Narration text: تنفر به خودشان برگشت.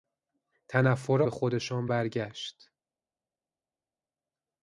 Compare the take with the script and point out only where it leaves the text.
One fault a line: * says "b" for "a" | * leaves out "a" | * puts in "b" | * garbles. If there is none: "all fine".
all fine